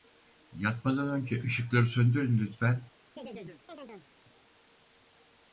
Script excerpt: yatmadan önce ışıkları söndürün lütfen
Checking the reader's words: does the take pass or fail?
pass